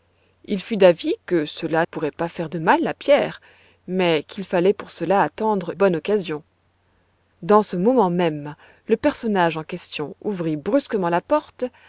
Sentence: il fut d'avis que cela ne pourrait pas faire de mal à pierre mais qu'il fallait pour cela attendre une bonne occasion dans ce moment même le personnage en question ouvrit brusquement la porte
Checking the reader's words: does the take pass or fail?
fail